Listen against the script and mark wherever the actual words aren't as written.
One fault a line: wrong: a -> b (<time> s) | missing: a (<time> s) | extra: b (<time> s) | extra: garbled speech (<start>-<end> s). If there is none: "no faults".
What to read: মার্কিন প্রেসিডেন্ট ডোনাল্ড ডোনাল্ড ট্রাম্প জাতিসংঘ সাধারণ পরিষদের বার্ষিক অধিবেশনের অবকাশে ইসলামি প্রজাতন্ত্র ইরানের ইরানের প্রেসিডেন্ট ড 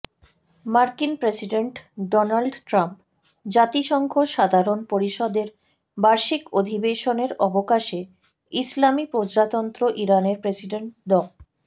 missing: ডোনাল্ড (2.5 s)
missing: ইরানের (10.4 s)